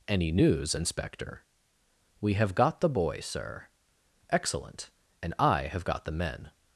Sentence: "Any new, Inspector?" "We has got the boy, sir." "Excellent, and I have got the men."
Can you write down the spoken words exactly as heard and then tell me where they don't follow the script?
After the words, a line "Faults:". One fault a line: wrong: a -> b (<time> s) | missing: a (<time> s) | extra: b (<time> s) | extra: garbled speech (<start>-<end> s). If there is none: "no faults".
"Any news, Inspector?" "We have got the boy, sir." "Excellent, and I have got the men."
Faults:
wrong: new -> news (0.3 s)
wrong: has -> have (2.3 s)